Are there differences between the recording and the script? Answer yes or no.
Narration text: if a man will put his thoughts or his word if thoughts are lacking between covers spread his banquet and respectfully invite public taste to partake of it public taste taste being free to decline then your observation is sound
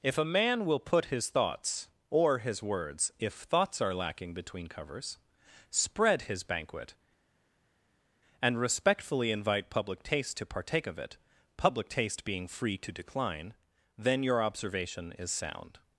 yes